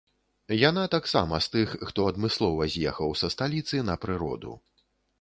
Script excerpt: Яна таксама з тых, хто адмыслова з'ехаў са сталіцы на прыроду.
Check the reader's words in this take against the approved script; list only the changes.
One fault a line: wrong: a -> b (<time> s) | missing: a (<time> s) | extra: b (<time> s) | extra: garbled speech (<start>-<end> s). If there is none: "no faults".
no faults